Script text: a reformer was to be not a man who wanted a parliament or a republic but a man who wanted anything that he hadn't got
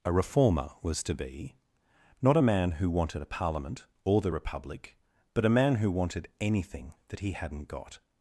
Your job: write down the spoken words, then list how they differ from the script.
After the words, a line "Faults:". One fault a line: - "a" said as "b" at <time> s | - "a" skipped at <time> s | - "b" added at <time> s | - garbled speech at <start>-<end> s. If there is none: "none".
a reformer was to be not a man who wanted a parliament or the republic but a man who wanted anything that he hadn't got
Faults:
- "a" said as "the" at 4.2 s